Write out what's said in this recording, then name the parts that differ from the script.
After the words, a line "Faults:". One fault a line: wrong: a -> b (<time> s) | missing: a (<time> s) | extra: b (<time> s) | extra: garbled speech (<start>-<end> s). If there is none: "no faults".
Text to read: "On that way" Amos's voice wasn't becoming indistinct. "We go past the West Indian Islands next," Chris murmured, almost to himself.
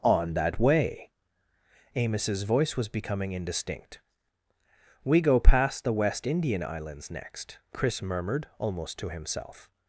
"On that way" Amos's voice was becoming indistinct. "We go past the West Indian Islands next," Chris murmured, almost to himself.
Faults:
wrong: wasn't -> was (2.8 s)